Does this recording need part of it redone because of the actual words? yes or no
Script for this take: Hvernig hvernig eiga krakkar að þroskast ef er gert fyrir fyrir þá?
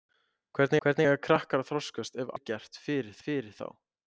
no